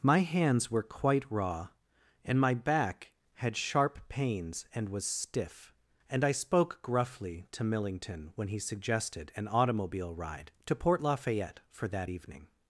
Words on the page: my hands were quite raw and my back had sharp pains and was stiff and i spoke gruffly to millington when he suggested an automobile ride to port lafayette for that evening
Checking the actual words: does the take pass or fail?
pass